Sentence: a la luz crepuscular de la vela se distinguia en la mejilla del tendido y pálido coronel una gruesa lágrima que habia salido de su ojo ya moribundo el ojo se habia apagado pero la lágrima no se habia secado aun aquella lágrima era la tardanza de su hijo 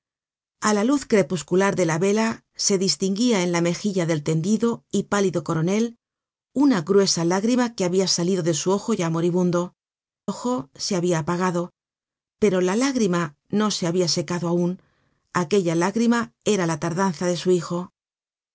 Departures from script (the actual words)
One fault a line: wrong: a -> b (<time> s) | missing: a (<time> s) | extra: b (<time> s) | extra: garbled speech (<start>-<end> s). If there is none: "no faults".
missing: el (9.8 s)